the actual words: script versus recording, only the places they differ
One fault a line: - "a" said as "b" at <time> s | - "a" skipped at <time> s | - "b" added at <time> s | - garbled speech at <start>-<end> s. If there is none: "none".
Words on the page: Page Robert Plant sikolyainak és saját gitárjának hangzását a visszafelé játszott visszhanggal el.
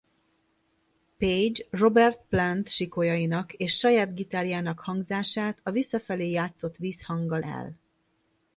none